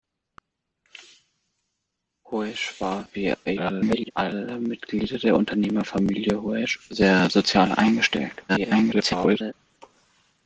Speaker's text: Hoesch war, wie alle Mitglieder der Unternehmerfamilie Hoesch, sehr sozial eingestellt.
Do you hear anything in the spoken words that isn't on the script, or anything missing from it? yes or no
yes